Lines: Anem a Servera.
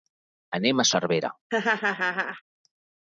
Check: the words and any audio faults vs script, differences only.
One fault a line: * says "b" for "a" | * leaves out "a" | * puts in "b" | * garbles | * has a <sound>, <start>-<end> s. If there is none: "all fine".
* has a laugh, 1.5-2.4 s